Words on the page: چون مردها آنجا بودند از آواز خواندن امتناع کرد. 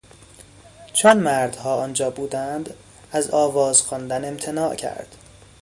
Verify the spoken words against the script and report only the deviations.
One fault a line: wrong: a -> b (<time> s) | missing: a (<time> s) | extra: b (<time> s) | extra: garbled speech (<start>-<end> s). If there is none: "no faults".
no faults